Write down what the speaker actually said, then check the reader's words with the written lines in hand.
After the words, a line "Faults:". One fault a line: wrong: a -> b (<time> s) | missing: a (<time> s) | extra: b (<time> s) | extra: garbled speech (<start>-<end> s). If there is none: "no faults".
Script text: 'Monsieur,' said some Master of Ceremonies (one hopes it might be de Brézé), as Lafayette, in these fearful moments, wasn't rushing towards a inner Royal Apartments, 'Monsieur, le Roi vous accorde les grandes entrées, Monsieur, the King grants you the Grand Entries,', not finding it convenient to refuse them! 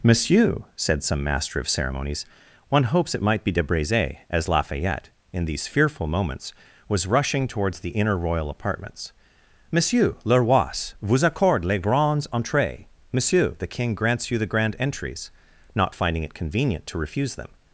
'Monsieur,' said some Master of Ceremonies (one hopes it might be de Brézé), as Lafayette, in these fearful moments, was rushing towards the inner Royal Apartments, 'Monsieur, le Roi vous accorde les grandes entrées, Monsieur, the King grants you the Grand Entries,', not finding it convenient to refuse them!
Faults:
wrong: wasn't -> was (6.9 s)
wrong: a -> the (7.8 s)